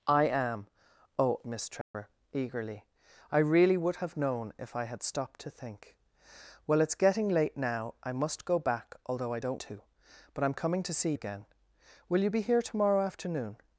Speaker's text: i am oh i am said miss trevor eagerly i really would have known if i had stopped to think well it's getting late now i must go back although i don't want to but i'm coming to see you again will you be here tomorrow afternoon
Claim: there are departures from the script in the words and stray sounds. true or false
true